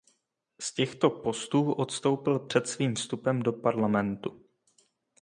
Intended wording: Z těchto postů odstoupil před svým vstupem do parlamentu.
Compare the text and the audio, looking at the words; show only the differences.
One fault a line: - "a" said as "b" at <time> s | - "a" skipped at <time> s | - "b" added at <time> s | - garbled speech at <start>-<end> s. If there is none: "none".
none